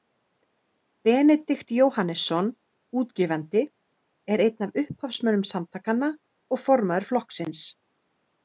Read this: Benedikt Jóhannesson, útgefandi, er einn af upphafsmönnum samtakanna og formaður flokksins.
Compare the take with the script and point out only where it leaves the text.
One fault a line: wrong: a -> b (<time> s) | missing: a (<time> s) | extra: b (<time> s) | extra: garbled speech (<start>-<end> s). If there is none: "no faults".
no faults